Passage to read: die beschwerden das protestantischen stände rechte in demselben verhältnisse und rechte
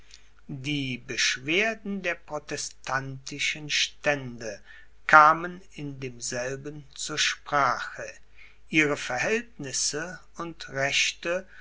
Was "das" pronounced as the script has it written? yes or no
no